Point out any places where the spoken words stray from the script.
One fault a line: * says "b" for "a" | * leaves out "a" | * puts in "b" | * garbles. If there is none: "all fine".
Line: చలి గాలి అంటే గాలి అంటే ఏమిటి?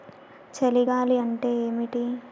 * leaves out "గాలి అంటే"